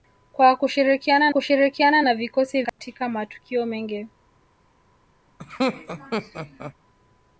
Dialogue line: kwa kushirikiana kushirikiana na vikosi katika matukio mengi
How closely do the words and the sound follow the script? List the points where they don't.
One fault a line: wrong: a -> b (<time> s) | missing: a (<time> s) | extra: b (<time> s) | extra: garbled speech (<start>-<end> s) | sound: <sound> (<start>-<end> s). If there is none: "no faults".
sound: dropout (2.7-2.8 s)
sound: laugh (5.4-6.7 s)